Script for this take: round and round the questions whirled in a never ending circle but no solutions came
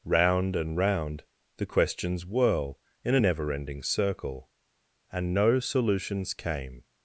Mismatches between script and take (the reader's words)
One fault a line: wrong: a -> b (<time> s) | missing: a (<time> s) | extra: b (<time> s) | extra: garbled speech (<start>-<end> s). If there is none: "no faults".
wrong: whirled -> whirl (2.2 s)
wrong: but -> and (5.1 s)